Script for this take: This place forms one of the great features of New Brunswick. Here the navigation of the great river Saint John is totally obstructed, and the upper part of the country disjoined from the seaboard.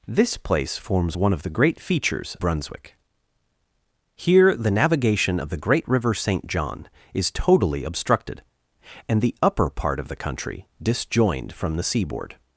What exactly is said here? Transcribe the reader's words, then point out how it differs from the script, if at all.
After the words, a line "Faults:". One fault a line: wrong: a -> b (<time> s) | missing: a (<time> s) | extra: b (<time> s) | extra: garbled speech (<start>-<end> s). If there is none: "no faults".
This place forms one of the great features Brunswick. Here the navigation of the great river Saint John is totally obstructed, and the upper part of the country disjoined from the seaboard.
Faults:
missing: of New (2.4 s)